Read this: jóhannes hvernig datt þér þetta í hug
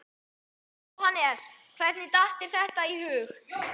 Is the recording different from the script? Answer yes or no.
no